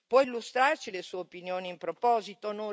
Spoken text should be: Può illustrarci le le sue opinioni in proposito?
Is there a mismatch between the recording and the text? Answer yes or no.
yes